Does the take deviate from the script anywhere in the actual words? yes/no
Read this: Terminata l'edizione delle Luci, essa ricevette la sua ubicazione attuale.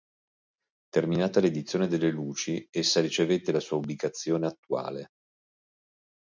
no